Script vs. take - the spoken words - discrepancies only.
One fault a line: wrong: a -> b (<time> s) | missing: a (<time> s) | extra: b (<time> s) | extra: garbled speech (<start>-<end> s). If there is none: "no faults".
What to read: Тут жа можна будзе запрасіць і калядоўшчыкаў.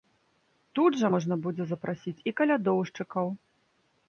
no faults